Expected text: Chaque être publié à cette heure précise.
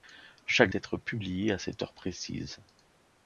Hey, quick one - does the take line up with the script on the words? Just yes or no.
yes